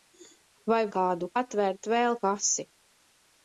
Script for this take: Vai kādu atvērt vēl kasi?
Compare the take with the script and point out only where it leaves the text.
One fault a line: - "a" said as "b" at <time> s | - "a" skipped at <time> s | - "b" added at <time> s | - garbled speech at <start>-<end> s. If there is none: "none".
none